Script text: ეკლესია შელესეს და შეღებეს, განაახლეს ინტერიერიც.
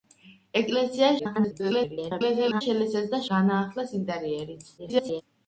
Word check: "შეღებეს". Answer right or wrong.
wrong